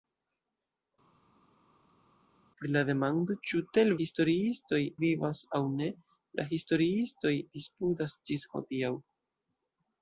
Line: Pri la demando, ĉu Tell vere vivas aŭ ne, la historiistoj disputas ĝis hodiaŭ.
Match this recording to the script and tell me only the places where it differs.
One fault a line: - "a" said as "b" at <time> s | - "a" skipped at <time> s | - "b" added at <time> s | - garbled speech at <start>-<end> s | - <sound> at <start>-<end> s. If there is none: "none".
- "vere" said as "historiistoj" at 4.0 s